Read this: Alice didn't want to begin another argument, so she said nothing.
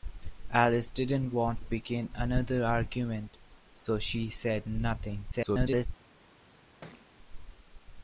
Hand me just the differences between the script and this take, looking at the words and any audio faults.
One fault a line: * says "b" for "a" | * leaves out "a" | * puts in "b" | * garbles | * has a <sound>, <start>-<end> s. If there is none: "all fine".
* leaves out "to"
* garbles
* has a thud, 6.8-7.1 s